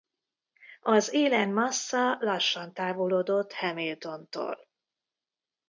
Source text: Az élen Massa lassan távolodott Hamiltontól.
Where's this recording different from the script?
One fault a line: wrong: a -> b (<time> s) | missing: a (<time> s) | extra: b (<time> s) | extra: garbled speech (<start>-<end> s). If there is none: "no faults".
no faults